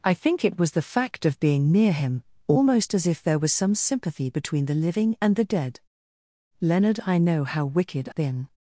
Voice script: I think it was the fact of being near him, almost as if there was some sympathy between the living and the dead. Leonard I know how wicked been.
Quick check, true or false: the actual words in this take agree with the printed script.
true